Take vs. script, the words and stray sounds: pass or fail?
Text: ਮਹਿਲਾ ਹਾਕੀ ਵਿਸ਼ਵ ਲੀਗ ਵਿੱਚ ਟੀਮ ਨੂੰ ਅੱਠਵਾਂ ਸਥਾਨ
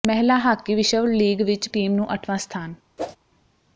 fail